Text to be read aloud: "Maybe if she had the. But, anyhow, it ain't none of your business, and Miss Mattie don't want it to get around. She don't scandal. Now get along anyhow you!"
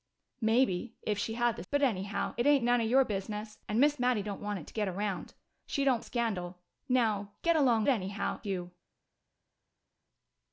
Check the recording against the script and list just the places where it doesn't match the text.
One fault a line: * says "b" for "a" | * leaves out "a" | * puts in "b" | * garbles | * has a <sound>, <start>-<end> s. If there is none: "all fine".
all fine